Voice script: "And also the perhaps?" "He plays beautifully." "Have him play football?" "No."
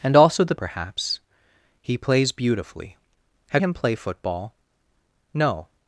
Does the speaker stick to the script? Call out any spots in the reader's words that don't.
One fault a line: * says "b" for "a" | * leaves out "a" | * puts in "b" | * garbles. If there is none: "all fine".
all fine